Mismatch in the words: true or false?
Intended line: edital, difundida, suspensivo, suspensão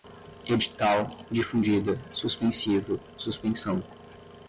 false